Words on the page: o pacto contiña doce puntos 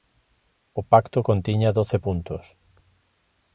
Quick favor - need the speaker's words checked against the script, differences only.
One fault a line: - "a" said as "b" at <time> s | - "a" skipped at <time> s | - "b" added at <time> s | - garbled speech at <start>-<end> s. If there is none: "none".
none